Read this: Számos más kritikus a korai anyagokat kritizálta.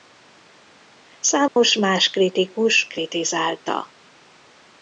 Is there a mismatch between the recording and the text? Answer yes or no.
yes